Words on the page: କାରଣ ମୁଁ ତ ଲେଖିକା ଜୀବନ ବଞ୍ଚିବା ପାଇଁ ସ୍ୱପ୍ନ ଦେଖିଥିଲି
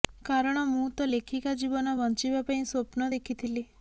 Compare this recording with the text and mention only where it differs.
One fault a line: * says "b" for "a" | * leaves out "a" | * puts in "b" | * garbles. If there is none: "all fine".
all fine